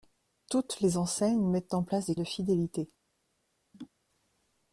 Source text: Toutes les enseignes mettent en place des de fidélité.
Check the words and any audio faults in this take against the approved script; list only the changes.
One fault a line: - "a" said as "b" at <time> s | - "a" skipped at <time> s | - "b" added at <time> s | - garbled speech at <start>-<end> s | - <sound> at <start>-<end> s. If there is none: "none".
- laugh at 3.7-3.9 s